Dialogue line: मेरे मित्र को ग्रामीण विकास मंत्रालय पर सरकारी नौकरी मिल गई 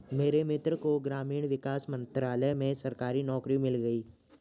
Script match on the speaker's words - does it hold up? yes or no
no